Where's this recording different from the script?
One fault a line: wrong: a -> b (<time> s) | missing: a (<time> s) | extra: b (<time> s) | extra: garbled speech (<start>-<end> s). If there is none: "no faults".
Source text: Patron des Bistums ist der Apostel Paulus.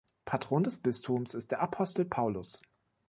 no faults